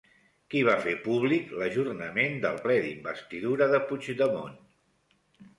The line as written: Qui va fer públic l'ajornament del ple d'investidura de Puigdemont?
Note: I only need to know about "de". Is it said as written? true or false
true